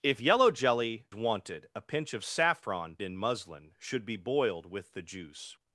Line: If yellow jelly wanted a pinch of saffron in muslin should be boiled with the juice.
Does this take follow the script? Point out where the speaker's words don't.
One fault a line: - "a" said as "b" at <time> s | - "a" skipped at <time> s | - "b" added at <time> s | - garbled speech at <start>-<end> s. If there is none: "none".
none